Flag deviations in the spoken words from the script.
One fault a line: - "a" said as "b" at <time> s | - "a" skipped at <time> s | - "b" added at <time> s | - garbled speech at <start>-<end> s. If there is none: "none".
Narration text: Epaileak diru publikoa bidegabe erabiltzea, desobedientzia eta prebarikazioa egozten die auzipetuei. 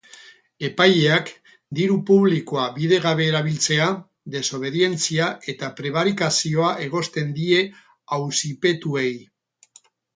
none